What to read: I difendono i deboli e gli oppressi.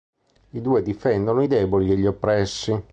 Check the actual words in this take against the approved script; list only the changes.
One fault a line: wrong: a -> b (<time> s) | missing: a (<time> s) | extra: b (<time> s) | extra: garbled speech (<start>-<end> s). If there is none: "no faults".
extra: due (0.6 s)